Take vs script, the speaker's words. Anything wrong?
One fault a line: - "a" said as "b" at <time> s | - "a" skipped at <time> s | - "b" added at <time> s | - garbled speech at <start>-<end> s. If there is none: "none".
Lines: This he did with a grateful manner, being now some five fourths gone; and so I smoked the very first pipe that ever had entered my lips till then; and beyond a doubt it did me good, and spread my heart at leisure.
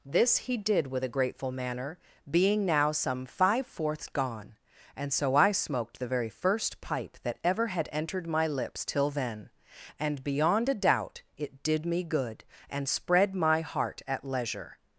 none